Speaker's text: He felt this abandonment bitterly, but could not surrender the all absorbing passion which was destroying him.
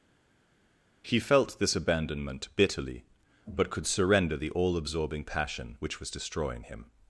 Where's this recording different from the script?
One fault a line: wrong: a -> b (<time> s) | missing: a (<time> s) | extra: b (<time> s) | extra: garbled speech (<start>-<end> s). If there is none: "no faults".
missing: not (3.9 s)